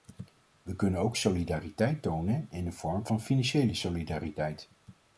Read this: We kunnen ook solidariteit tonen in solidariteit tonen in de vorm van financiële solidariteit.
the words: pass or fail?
fail